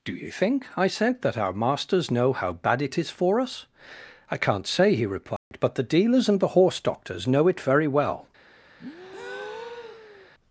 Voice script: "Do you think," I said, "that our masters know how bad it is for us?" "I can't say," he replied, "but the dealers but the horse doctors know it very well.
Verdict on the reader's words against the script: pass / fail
fail